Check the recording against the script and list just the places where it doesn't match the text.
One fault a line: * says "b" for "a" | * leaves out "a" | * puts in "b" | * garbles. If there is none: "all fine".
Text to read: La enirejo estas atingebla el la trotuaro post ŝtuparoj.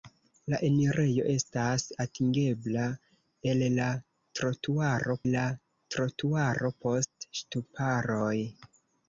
* puts in "la trotuaro"